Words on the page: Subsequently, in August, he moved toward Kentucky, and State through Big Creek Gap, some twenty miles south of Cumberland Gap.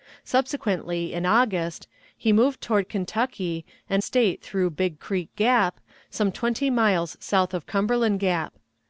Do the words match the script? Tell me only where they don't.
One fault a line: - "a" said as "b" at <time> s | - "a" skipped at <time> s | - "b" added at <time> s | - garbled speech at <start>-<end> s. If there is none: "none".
none